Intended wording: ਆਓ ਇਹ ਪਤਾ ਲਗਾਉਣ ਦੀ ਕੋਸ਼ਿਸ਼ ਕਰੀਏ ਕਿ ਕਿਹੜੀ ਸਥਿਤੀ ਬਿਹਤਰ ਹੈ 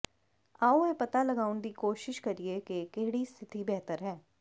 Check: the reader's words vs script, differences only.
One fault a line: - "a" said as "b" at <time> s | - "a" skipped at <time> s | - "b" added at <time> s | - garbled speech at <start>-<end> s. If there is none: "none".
none